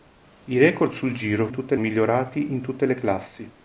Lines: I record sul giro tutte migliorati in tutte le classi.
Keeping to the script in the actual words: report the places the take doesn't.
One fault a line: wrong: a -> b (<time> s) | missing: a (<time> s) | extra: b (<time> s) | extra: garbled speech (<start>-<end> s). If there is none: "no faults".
no faults